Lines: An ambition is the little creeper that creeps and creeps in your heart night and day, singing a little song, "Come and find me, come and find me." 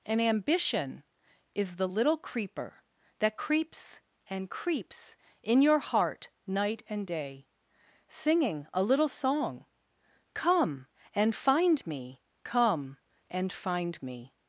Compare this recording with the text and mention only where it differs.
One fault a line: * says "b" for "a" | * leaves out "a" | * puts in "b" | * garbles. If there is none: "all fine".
all fine